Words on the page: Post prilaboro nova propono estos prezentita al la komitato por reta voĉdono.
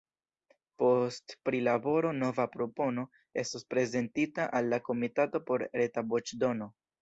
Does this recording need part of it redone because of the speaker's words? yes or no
no